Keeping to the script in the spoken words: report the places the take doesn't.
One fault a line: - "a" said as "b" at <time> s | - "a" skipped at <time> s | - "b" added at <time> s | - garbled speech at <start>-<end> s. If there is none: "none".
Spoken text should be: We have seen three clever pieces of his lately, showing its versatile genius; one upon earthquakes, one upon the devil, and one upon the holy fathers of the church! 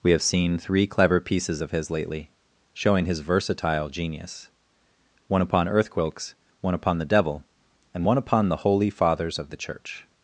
- "its" said as "his" at 3.0 s